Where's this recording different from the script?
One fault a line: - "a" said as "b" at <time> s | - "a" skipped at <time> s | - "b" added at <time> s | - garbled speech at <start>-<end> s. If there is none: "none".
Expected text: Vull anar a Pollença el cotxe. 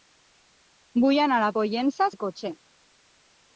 none